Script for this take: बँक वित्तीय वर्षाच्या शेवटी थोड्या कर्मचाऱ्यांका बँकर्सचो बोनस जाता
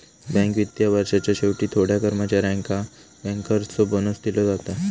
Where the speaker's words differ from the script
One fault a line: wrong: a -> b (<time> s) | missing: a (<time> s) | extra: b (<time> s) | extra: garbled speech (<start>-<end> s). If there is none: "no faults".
extra: दिलो (4.3 s)